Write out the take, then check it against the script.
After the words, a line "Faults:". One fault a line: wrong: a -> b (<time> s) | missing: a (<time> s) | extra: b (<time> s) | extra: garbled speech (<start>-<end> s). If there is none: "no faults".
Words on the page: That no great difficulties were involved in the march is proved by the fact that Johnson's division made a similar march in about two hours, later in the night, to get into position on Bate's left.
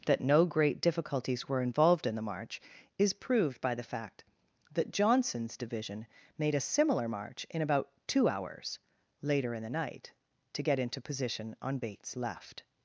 That no great difficulties were involved in the march is proved by the fact that Johnson's division made a similar march in about two hours, later in the night, to get into position on Bate's left.
Faults:
no faults